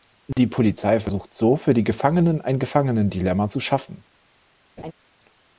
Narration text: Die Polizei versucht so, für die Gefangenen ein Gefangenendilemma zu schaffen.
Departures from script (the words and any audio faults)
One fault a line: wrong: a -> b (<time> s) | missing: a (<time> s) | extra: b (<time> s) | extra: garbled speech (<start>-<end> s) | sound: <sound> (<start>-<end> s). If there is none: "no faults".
sound: dropout (0.3-0.4 s)
sound: laugh (4.8-4.9 s)